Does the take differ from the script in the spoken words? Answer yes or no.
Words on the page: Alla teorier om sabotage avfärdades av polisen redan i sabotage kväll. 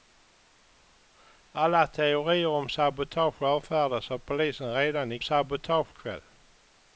no